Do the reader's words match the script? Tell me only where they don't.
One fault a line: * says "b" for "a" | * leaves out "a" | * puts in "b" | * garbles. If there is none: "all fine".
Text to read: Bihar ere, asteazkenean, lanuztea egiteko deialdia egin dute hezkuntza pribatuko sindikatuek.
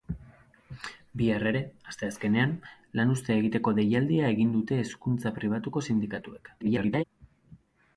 * garbles